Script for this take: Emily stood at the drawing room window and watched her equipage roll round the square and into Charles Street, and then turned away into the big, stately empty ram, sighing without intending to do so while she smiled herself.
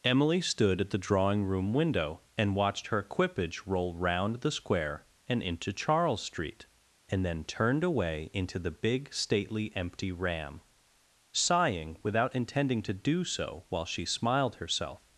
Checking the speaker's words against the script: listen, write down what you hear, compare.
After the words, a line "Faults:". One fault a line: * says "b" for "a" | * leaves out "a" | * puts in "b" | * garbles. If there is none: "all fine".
Emily stood at the drawing room window and watched her equipage roll round the square and into Charles Street, and then turned away into the big, stately empty ram, sighing without intending to do so while she smiled herself.
Faults:
all fine